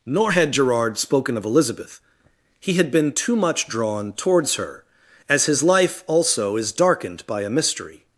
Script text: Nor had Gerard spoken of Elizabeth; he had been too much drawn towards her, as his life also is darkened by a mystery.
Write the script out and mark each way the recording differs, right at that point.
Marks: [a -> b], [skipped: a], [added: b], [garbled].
Nor had Gerard spoken of Elizabeth; he had been too much drawn towards her, as his life also is darkened by a mystery.